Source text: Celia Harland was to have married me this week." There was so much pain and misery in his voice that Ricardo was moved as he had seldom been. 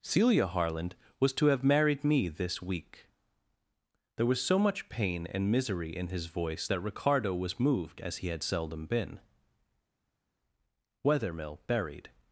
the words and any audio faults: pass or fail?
fail